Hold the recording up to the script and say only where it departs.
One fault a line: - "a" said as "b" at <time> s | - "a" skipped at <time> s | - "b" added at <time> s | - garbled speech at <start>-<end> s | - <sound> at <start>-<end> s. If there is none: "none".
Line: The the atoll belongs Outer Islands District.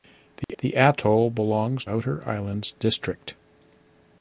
- dropout at 0.4-0.5 s